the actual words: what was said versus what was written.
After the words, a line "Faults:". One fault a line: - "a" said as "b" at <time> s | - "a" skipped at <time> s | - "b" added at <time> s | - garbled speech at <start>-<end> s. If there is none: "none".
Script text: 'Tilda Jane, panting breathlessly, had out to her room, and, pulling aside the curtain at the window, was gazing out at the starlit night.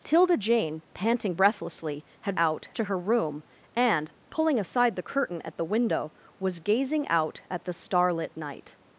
'Tilda Jane, panting breathlessly, had out to her room, and, pulling aside the curtain at the window, was gazing out at the starlit night.
Faults:
none